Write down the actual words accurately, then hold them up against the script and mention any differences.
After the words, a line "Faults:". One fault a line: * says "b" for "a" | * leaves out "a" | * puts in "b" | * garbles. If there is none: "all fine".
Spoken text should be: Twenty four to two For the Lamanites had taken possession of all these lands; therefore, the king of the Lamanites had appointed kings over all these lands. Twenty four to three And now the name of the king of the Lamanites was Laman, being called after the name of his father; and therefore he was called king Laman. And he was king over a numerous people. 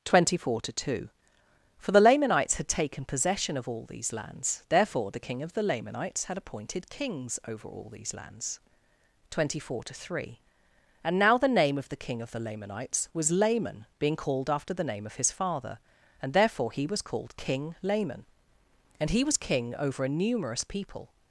Twenty four to two For the Lamanites had taken possession of all these lands; therefore, the king of the Lamanites had appointed kings over all these lands. Twenty four to three And now the name of the king of the Lamanites was Laman, being called after the name of his father; and therefore he was called king Laman. And he was king over a numerous people.
Faults:
all fine